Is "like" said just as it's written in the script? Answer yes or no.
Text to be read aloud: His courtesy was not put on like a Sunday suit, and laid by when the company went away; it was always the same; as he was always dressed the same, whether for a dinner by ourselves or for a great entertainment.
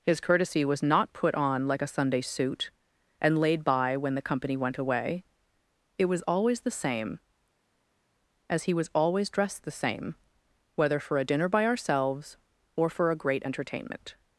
yes